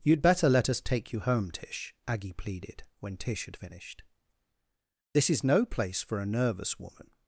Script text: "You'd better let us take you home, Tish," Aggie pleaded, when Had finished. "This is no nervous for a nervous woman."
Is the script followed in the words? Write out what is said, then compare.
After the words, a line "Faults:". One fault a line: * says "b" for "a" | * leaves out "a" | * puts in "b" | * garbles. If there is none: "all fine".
"You'd better let us take you home, Tish," Aggie pleaded, when Tish had finished. "This is no place for a nervous woman."
Faults:
* puts in "Tish"
* says "place" for "nervous"